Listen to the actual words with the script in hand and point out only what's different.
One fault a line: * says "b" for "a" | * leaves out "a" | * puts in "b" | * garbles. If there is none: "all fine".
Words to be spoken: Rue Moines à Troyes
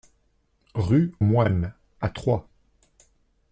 all fine